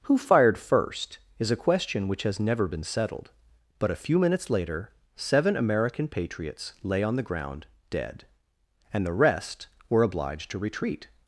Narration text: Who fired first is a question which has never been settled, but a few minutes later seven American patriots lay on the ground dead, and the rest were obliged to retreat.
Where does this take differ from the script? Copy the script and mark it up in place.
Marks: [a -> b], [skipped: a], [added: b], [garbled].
Who fired first is a question which has never been settled, but a few minutes later seven American patriots lay on the ground dead, and the rest were obliged to retreat.